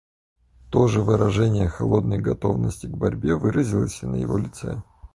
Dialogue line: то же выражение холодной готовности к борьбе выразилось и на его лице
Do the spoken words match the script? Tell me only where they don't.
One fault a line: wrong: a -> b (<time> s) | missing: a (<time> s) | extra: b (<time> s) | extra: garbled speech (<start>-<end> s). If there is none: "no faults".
no faults